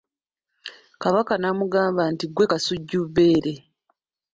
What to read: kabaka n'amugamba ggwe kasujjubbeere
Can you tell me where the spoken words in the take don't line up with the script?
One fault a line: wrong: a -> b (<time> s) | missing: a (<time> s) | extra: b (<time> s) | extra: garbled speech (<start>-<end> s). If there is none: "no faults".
extra: nti (2.1 s)